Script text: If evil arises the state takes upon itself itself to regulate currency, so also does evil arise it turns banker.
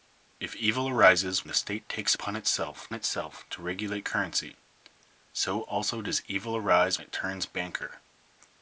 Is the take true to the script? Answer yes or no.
yes